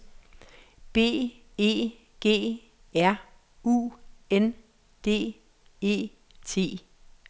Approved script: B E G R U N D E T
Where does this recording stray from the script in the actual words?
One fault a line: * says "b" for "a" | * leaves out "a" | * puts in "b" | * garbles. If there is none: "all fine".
all fine